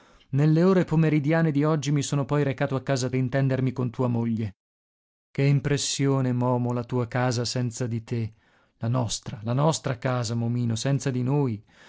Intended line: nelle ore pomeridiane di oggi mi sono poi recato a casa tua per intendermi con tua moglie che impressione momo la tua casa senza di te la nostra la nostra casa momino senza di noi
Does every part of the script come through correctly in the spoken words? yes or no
no